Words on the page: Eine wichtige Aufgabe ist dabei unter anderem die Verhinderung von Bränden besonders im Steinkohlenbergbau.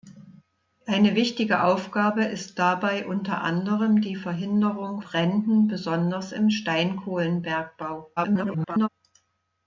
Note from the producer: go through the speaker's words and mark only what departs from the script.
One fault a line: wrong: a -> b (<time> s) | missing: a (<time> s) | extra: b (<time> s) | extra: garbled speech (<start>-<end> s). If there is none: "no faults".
missing: von (5.0 s)
extra: garbled speech (8.2-8.9 s)